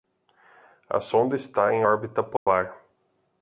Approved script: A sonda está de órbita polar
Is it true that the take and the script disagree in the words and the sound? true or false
true